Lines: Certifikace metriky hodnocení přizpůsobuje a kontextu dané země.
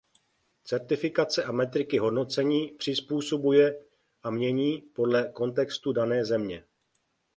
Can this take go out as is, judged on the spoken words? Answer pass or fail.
fail